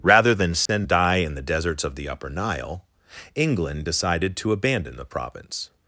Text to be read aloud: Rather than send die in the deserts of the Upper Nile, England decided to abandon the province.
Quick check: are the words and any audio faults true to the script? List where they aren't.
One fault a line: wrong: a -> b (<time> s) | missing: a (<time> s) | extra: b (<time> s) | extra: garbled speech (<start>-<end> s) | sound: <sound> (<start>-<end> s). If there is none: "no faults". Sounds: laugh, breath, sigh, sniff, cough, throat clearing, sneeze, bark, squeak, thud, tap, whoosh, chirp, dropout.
sound: dropout (0.7-0.7 s)